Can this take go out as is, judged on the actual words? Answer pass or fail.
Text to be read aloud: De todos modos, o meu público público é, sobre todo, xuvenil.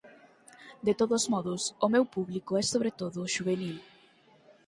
fail